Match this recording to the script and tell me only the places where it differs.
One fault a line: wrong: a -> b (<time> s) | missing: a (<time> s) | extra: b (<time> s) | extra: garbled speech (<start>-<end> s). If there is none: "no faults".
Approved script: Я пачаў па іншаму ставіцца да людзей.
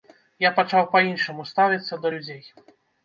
no faults